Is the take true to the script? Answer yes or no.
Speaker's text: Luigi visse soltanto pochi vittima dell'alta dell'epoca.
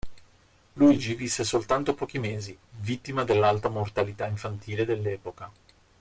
no